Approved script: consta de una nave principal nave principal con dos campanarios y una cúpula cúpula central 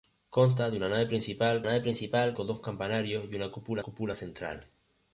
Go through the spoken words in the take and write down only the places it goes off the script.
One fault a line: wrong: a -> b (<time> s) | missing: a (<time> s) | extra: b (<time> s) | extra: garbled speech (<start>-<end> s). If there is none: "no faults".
no faults